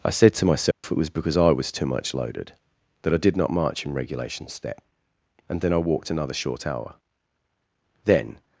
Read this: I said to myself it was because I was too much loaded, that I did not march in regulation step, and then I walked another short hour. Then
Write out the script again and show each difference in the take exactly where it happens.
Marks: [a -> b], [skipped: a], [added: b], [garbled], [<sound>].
I said to myself [dropout] it was because I was too much loaded, that I did not march in regulation step, and then I walked another short hour. Then